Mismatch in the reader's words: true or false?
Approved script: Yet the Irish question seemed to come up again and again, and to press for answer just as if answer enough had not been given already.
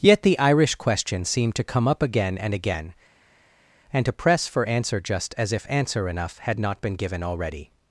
false